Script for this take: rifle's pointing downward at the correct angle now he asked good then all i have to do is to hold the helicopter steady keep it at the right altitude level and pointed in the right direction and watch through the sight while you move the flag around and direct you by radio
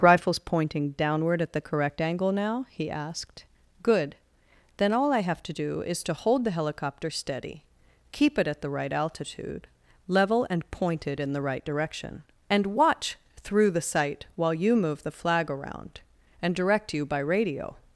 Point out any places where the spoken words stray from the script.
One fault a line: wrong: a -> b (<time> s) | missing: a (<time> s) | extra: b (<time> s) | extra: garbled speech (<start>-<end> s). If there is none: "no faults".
no faults